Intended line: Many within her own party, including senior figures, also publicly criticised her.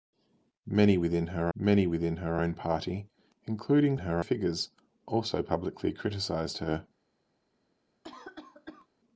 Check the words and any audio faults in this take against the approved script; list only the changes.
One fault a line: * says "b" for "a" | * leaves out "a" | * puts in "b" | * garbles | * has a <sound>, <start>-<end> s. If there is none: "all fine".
* puts in "many within her"
* says "her" for "senior"
* has a cough, 8.0-8.9 s